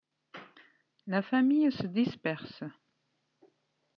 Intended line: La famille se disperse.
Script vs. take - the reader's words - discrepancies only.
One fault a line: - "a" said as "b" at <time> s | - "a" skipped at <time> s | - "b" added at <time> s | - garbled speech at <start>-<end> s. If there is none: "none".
none